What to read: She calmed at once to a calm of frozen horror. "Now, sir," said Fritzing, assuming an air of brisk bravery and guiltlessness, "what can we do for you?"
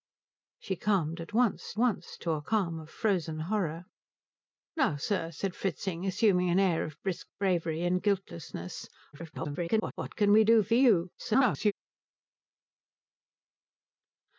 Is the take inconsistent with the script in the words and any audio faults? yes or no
yes